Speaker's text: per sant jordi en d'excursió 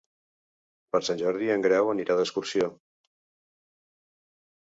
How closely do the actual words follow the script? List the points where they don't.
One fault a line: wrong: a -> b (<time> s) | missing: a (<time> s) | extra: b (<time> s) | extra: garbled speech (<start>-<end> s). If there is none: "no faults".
extra: grau anirà (1.7 s)